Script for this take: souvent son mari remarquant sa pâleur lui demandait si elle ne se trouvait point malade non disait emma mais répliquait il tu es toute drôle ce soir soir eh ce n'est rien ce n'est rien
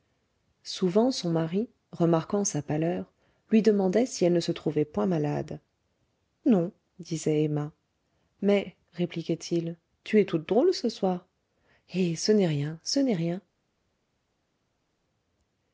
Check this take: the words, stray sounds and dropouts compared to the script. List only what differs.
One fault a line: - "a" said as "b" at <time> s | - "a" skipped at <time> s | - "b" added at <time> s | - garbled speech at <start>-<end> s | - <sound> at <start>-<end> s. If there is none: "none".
- "soir" skipped at 11.3 s